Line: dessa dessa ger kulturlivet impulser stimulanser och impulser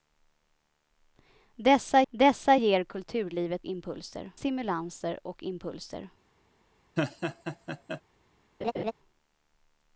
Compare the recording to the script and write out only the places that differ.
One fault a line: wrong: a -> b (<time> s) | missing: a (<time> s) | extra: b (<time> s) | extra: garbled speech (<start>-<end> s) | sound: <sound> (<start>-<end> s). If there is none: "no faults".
sound: laugh (7.0-8.0 s)
sound: laugh (8.6-8.9 s)